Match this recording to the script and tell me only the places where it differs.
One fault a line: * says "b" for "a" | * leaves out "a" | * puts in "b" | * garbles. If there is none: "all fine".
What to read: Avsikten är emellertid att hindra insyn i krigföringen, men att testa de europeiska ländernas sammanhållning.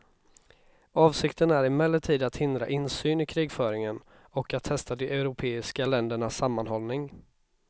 * says "och" for "men"